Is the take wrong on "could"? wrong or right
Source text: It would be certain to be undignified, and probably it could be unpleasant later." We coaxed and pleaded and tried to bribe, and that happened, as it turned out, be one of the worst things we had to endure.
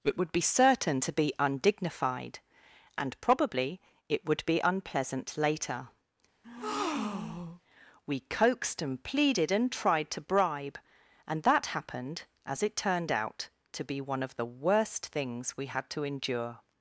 wrong